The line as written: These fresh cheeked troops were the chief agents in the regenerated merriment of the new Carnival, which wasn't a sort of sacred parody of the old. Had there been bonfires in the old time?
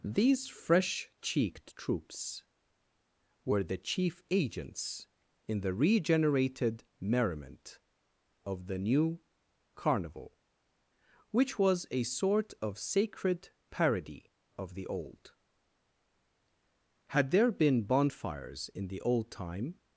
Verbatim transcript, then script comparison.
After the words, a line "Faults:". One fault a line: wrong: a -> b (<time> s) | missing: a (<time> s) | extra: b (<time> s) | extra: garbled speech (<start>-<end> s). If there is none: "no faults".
These fresh cheeked troops were the chief agents in the regenerated merriment of the new Carnival, which was a sort of sacred parody of the old. Had there been bonfires in the old time?
Faults:
wrong: wasn't -> was (11.6 s)